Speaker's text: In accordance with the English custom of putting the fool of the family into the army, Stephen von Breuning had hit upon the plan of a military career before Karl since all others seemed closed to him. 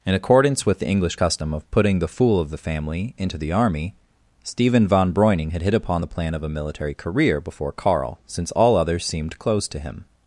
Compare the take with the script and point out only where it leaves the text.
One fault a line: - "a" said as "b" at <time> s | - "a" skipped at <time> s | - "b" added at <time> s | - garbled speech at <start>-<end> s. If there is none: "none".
none